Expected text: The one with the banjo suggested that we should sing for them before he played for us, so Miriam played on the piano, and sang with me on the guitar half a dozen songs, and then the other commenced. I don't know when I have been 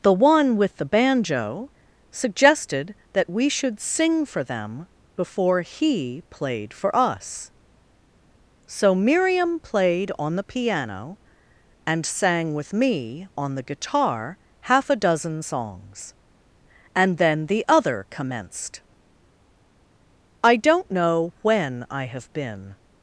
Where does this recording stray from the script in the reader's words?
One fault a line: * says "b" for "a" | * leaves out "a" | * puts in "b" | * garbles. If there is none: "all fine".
all fine